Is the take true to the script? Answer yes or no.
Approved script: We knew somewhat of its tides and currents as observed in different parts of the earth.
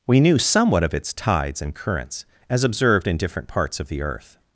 yes